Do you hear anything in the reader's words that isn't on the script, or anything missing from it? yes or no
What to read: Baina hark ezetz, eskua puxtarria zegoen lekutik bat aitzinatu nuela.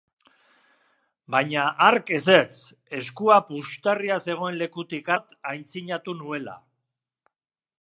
no